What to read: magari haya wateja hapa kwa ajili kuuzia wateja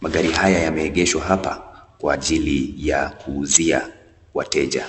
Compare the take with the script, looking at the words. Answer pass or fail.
fail